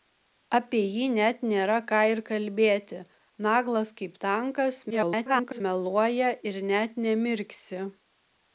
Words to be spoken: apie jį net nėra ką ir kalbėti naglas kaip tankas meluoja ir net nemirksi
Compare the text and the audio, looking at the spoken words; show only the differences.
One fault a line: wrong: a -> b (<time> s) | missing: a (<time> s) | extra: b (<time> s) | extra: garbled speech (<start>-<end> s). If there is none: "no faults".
extra: garbled speech (4.9-5.6 s)